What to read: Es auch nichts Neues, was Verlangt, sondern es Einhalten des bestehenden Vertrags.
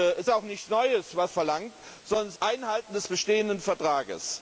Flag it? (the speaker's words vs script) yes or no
no